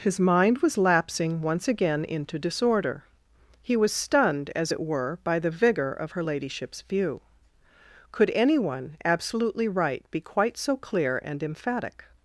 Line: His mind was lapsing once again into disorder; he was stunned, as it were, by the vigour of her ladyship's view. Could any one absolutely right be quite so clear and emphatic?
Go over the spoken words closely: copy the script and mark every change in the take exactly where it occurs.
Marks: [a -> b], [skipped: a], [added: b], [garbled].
His mind was lapsing once again into disorder; he was stunned, as it were, by the vigour of her ladyship's view. Could any one absolutely right be quite so clear and emphatic?